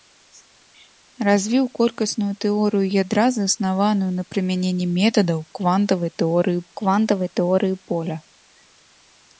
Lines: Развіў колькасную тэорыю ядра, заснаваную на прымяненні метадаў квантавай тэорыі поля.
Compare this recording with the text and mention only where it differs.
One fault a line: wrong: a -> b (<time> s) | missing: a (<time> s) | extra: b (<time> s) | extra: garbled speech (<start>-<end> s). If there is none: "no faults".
extra: квантавай тэорыі (6.8 s)